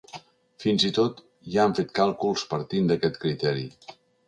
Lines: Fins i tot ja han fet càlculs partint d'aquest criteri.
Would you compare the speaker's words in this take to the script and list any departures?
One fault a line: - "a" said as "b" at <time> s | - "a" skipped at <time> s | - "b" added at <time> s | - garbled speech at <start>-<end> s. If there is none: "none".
none